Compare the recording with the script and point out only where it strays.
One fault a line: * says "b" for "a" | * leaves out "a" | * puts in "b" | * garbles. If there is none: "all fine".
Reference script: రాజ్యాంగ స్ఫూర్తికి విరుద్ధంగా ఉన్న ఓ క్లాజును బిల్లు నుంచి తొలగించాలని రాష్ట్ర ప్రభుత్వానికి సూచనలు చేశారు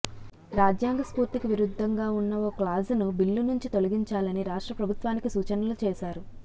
all fine